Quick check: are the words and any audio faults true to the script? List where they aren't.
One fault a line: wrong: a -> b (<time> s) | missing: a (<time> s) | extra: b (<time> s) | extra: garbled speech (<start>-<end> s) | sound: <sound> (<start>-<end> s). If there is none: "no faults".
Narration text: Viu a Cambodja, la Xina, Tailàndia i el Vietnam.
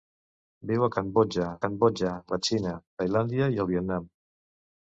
extra: Cambodja (1.6 s)